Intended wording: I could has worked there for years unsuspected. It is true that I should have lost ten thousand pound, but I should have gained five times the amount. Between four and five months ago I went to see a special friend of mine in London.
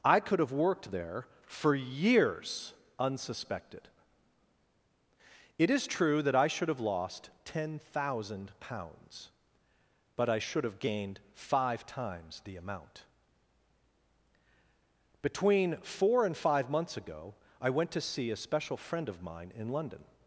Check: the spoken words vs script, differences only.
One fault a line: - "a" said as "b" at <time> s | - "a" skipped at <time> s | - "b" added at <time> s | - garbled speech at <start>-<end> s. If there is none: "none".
- "has" said as "have" at 0.4 s
- "pound" said as "pounds" at 8.6 s